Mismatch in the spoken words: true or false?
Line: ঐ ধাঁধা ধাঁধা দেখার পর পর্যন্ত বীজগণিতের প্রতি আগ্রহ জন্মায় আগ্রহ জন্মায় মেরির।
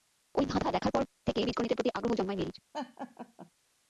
true